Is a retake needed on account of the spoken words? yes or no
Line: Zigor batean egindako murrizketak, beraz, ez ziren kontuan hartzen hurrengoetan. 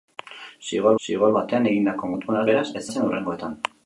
yes